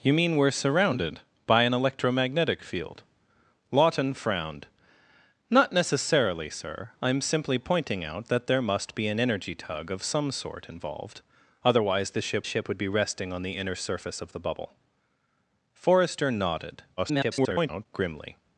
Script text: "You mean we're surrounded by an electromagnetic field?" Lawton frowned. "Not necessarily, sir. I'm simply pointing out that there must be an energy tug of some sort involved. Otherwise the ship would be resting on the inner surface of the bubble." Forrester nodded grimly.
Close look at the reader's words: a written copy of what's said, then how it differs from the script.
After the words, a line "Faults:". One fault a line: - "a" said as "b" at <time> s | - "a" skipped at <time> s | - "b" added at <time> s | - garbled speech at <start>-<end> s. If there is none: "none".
"You mean we're surrounded by an electromagnetic field?" Lawton frowned. "Not necessarily, sir. I'm simply pointing out that there must be an energy tug of some sort involved. Otherwise the ship ship would be resting on the inner surface of the bubble." Forrester nodded [garbled] grimly.
Faults:
- "ship" added at 12.4 s
- garbled speech at 17.0-17.9 s